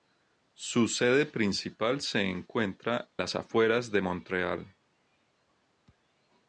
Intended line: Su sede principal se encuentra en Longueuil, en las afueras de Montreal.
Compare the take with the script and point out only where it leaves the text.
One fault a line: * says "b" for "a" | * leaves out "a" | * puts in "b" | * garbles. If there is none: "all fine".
* leaves out "en Longueuil en"